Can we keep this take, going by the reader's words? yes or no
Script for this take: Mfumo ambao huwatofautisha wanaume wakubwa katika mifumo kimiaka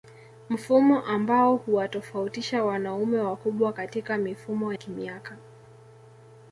yes